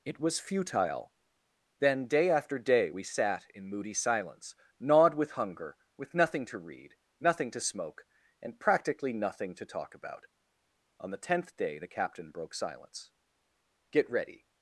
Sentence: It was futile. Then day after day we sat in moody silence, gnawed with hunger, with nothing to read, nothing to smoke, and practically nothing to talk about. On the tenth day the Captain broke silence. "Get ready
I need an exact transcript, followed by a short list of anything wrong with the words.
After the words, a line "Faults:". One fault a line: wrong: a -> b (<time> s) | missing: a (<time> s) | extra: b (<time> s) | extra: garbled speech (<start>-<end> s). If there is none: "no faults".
It was futile. Then day after day we sat in moody silence, gnawed with hunger, with nothing to read, nothing to smoke, and practically nothing to talk about. On the tenth day the Captain broke silence. "Get ready
Faults:
no faults